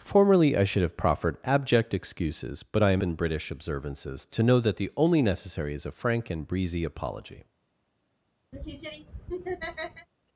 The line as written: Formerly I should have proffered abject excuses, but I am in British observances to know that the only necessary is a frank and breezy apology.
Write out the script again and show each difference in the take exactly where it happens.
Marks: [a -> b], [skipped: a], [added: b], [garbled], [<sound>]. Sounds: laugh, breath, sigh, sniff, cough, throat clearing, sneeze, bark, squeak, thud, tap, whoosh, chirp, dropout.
Formerly I should have proffered abject excuses, but I am in British observances to know that the only necessary is a frank and breezy apology. [laugh]